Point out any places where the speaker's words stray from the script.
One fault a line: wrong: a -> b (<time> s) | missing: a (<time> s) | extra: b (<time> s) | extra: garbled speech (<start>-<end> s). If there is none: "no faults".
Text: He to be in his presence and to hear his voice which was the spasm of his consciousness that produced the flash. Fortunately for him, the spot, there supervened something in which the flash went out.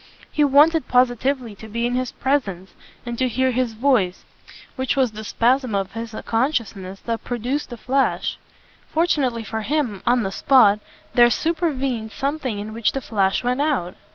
extra: wanted positively (0.4 s)
extra: on (10.1 s)